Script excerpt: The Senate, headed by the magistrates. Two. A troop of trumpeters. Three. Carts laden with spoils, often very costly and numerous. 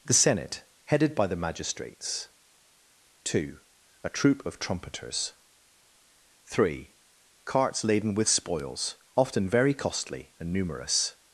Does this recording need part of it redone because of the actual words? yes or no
no